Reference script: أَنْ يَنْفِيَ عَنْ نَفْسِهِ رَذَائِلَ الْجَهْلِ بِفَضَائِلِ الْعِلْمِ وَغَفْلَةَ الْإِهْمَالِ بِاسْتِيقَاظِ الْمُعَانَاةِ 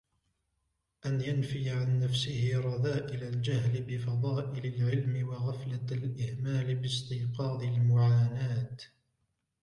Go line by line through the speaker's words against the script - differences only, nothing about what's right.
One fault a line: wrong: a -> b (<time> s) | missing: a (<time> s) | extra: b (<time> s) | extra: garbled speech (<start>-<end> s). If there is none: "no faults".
no faults